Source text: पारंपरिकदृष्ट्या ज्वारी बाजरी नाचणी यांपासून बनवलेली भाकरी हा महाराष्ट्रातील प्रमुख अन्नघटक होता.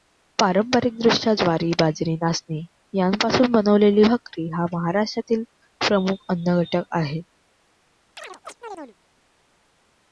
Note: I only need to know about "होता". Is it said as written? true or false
false